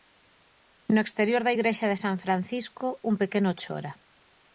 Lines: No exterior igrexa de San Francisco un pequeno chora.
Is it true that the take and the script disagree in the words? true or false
true